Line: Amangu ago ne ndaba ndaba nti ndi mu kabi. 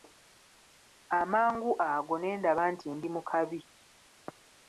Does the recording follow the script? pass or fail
fail